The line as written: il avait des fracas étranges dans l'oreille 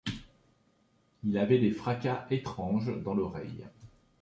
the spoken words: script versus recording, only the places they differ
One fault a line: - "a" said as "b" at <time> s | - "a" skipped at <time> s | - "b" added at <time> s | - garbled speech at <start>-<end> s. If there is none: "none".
none